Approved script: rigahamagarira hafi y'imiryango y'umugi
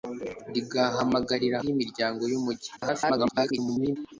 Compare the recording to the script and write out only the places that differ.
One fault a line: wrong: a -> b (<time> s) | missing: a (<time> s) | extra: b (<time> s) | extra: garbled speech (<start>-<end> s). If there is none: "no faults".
missing: hafi (1.6 s)
extra: garbled speech (2.8-4.0 s)